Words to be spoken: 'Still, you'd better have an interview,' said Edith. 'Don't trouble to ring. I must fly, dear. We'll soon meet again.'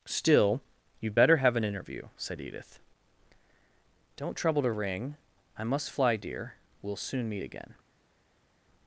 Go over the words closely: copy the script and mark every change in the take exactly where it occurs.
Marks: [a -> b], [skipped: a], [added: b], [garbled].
'Still, you'd better have an interview,' said Edith. 'Don't trouble to ring. I must fly, dear. We'll soon meet again.'